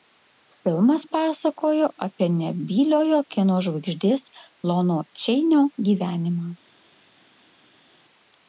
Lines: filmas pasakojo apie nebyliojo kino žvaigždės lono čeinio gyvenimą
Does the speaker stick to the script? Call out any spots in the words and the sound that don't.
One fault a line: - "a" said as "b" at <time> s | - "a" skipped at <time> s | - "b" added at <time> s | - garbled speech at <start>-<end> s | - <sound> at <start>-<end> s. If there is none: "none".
none